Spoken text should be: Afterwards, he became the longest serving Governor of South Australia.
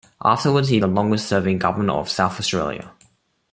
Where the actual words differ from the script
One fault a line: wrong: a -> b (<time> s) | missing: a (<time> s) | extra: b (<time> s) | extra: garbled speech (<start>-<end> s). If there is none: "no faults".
missing: became (0.8 s)